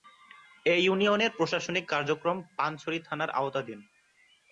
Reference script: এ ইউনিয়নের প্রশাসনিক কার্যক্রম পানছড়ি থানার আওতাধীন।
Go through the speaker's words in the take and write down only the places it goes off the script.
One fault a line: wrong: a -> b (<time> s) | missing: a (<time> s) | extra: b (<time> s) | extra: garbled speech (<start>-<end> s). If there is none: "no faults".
no faults